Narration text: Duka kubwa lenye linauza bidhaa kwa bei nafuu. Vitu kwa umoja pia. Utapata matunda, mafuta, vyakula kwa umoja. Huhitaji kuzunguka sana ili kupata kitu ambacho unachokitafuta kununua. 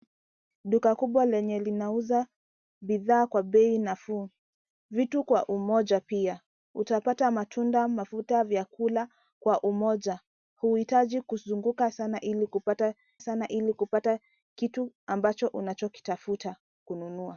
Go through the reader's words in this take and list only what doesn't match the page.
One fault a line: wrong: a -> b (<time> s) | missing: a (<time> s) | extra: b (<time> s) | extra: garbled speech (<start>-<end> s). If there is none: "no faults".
extra: sana ili kupata (13.2 s)